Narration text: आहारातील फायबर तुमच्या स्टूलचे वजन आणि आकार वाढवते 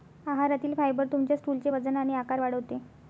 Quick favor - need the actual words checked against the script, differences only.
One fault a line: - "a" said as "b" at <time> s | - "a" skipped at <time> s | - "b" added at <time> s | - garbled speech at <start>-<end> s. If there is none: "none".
none